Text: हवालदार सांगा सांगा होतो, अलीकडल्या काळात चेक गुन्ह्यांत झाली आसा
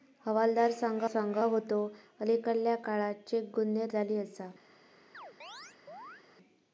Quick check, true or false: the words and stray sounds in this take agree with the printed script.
false